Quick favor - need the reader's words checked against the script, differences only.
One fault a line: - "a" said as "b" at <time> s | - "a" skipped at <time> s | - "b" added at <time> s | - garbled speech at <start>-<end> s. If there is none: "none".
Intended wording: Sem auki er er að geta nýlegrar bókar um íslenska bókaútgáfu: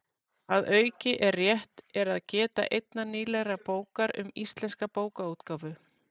- "Sem" said as "Að" at 0.6 s
- "rétt" added at 1.4 s
- "einnar" added at 2.8 s